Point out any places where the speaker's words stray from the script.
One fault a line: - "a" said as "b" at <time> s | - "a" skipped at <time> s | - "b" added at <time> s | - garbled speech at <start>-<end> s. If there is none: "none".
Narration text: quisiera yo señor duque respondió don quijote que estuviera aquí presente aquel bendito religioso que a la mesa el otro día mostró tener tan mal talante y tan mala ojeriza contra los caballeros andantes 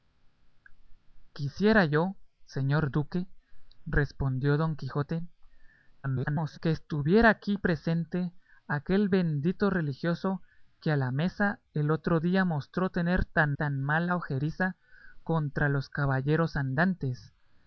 - garbled speech at 6.0-6.6 s
- "mal talante y" skipped at 13.6 s